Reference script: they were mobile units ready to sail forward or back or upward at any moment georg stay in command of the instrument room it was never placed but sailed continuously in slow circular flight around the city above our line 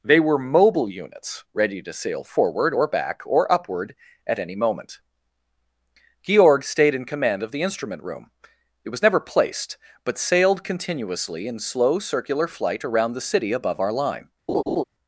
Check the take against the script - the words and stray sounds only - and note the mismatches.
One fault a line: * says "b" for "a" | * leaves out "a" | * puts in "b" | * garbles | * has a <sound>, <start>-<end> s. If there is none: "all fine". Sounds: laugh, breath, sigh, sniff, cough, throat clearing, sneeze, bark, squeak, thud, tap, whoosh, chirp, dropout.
* says "stayed" for "stay"
* has a laugh, 14.5-14.8 s